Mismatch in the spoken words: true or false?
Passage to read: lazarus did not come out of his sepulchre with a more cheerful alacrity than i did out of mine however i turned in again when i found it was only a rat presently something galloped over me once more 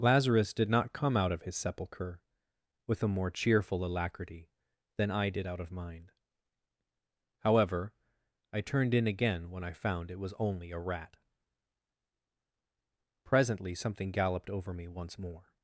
false